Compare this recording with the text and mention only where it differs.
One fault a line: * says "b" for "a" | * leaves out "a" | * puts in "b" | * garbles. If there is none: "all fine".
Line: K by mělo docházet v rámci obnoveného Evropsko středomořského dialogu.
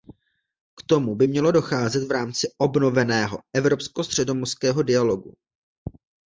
* puts in "tomu"